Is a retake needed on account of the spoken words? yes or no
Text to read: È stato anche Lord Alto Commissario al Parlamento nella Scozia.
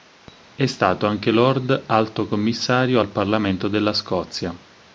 yes